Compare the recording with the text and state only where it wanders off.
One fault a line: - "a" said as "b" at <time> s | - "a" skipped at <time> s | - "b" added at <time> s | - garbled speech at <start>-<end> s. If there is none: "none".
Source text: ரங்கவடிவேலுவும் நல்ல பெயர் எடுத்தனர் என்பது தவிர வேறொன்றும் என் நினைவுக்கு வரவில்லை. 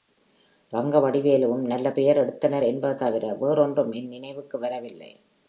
none